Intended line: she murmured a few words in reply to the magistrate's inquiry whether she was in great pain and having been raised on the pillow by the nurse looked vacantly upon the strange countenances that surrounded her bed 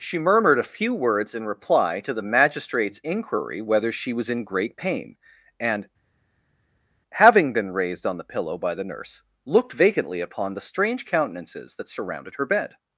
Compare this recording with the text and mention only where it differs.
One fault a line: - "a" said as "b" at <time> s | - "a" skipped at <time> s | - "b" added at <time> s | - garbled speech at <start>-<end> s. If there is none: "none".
none